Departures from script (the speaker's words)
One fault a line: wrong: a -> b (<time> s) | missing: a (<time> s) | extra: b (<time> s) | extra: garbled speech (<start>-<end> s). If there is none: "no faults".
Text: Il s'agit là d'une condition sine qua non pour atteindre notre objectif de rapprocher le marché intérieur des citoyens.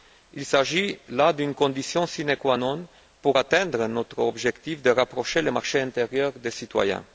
no faults